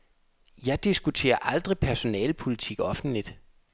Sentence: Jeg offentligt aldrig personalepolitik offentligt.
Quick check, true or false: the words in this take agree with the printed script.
false